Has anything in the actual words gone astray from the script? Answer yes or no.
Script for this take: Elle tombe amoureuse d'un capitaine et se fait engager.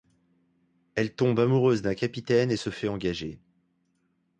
no